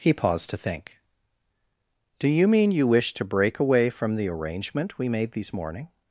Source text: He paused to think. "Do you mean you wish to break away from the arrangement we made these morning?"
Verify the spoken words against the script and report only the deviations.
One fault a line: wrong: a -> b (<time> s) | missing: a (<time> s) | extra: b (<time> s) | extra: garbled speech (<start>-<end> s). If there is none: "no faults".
no faults